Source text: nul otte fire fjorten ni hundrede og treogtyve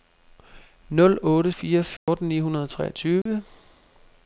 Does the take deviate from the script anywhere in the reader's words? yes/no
no